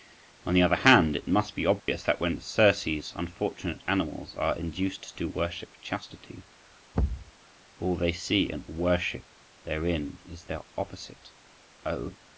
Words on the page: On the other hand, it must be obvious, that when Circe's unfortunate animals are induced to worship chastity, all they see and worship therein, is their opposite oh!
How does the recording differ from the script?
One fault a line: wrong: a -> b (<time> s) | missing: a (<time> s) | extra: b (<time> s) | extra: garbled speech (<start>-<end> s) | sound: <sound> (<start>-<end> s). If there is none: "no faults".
sound: dropout (1.8-1.9 s)
sound: thud (6.9-7.3 s)